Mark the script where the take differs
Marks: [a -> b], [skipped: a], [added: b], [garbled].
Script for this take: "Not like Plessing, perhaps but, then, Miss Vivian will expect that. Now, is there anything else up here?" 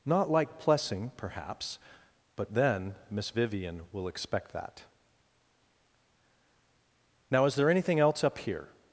"Not like Plessing, perhaps but, then, Miss Vivian will expect that. Now, is there anything else up here?"